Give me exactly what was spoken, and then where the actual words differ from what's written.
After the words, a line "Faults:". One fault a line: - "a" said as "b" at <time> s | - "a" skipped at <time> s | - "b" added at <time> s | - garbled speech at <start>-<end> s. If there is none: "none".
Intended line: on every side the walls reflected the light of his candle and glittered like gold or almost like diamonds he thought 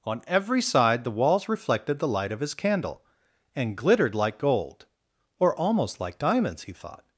on every side the walls reflected the light of his candle and glittered like gold or almost like diamonds he thought
Faults:
none